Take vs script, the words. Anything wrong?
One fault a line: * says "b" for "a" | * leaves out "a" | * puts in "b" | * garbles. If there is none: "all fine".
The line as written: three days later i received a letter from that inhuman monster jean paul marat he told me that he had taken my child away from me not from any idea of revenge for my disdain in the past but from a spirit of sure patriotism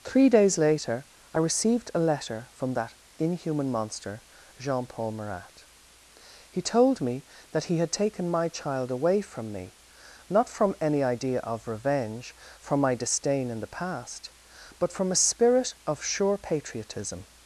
all fine